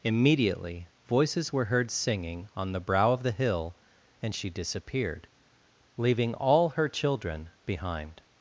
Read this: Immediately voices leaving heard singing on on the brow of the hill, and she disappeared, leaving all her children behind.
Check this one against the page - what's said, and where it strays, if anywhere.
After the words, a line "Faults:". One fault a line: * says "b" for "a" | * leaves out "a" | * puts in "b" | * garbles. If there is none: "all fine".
Immediately voices were heard singing on the brow of the hill, and she disappeared, leaving all her children behind.
Faults:
* says "were" for "leaving"
* leaves out "on"